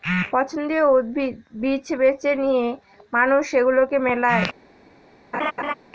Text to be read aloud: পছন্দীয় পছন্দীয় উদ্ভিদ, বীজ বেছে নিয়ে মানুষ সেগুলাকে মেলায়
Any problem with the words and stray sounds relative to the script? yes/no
yes